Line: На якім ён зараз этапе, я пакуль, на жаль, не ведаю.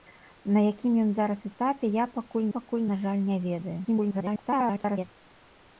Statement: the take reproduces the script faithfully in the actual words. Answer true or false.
false